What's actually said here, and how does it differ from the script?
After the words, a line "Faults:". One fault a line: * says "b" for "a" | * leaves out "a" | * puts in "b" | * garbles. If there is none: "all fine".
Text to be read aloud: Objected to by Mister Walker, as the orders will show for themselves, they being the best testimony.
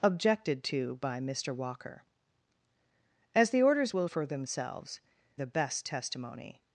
Objected to by Mister Walker, as the orders will for themselves, the best testimony.
Faults:
* leaves out "show"
* leaves out "they being"